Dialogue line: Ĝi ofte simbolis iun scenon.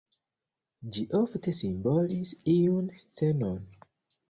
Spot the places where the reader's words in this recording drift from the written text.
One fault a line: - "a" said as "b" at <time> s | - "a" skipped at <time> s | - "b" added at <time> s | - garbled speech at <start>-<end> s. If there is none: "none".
none